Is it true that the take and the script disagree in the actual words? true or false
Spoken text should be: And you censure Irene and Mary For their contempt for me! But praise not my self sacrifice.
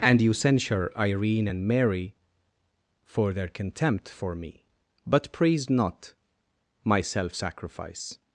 false